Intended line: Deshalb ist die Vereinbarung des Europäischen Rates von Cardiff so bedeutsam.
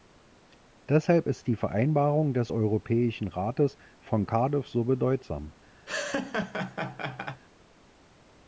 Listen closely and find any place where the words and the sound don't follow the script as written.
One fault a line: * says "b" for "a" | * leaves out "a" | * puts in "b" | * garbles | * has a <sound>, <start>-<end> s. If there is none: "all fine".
* has a laugh, 5.9-7.4 s